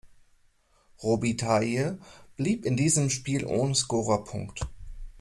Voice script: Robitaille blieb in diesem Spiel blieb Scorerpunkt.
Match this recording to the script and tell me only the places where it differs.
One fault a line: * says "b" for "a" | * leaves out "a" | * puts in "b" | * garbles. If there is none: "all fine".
* says "ohne" for "blieb"